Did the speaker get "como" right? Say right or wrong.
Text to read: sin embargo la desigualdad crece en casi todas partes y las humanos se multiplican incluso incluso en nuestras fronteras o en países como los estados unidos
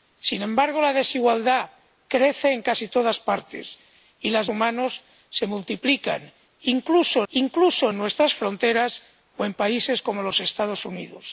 right